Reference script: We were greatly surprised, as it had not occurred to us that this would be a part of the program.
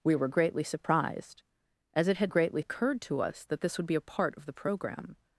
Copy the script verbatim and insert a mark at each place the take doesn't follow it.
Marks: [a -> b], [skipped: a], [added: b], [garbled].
We were greatly surprised, as it had [not -> greatly] occurred to us that this would be a part of the program.